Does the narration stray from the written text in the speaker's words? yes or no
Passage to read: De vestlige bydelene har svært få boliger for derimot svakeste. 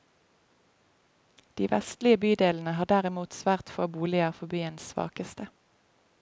yes